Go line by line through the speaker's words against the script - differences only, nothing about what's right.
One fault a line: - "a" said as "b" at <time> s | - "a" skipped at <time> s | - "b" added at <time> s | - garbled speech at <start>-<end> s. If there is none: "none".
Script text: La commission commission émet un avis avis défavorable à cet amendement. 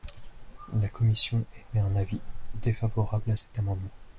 - "commission" skipped at 1.4 s
- "avis" skipped at 2.2 s